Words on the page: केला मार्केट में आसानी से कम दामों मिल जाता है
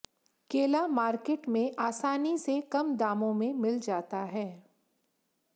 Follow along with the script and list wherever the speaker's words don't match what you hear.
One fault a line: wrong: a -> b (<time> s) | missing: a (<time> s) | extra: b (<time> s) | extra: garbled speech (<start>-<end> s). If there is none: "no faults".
extra: में (3.3 s)